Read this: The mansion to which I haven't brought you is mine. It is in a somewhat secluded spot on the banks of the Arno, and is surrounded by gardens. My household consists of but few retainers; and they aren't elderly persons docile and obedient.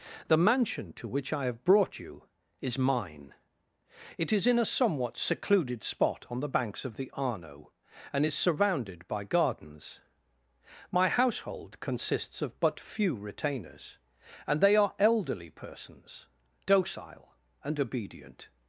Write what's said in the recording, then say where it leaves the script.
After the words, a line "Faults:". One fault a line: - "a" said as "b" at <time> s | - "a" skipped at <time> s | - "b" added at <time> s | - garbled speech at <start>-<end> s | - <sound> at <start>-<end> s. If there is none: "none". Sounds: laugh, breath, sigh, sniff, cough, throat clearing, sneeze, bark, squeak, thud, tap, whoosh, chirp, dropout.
The mansion to which I have brought you is mine. It is in a somewhat secluded spot on the banks of the Arno, and is surrounded by gardens. My household consists of but few retainers; and they are elderly persons docile and obedient.
Faults:
- "haven't" said as "have" at 1.4 s
- "aren't" said as "are" at 14.7 s